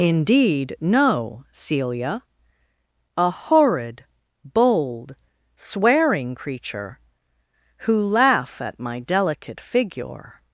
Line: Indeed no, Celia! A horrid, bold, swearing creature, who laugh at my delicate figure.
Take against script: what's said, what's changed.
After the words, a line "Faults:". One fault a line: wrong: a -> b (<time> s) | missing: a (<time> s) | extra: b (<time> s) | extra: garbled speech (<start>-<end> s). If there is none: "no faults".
Indeed no, Celia! A horrid, bold, swearing creature, who laugh at my delicate figure.
Faults:
no faults